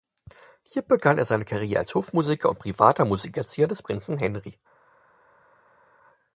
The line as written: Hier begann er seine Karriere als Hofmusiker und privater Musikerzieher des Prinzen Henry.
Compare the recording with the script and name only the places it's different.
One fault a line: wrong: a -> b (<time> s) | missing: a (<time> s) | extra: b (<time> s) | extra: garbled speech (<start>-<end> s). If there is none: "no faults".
no faults